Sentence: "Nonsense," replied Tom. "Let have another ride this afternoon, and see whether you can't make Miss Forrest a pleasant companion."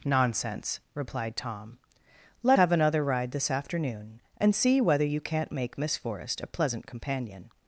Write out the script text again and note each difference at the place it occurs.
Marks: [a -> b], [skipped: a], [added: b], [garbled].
"Nonsense," replied Tom. "Let have another ride this afternoon, and see whether you can't make Miss Forrest a pleasant companion."